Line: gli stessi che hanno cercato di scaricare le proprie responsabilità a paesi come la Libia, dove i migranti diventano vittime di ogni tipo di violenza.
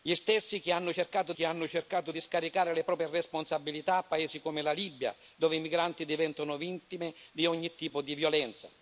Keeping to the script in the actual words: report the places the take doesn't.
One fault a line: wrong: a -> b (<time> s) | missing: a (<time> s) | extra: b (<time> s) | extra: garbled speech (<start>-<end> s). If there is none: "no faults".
extra: che hanno cercato (1.3 s)